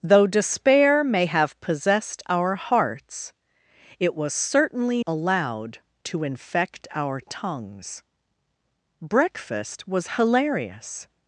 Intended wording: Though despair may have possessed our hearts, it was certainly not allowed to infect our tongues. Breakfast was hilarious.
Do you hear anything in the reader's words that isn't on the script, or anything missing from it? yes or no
yes